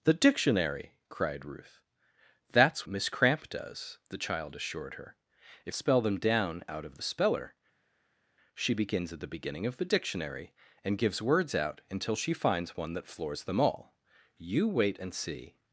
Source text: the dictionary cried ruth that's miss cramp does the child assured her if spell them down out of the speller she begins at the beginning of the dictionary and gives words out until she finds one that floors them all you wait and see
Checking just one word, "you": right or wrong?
right